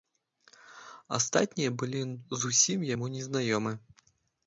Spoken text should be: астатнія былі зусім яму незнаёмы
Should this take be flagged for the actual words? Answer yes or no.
no